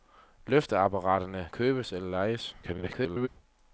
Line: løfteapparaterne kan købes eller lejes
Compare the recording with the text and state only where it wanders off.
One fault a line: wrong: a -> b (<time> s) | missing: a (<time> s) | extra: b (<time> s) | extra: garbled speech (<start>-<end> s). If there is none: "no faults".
missing: kan (1.5 s)
extra: garbled speech (2.6-3.3 s)